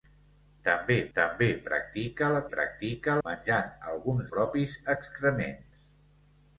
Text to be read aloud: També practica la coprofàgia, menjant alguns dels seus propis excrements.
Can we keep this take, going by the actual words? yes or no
no